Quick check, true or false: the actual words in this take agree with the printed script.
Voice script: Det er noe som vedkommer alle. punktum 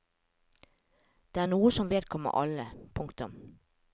true